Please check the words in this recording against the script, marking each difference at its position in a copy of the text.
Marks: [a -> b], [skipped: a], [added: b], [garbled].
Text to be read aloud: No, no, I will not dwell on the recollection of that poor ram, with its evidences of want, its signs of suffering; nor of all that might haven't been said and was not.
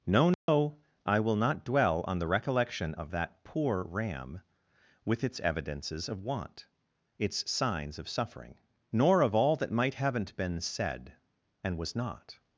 No, no, I will not dwell on the recollection of that poor ram, with its evidences of want, its signs of suffering; nor of all that might haven't been said and was not.